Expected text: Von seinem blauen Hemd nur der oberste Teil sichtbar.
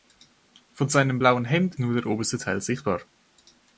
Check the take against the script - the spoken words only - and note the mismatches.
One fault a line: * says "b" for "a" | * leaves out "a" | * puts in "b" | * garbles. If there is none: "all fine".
all fine